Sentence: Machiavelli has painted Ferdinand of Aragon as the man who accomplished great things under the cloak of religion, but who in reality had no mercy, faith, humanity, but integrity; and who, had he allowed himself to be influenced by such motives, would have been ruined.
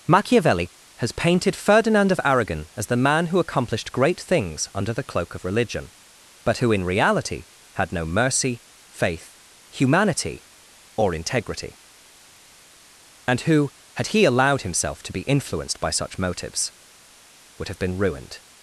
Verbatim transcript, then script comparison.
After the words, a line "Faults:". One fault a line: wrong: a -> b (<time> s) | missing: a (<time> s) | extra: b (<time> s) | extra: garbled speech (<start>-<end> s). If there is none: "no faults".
Machiavelli has painted Ferdinand of Aragon as the man who accomplished great things under the cloak of religion, but who in reality had no mercy, faith, humanity, or integrity; and who, had he allowed himself to be influenced by such motives, would have been ruined.
Faults:
wrong: but -> or (11.0 s)